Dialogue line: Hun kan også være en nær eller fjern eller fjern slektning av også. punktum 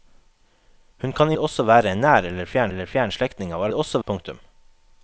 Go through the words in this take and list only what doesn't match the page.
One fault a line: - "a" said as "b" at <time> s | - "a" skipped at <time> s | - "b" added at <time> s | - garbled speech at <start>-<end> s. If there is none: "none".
none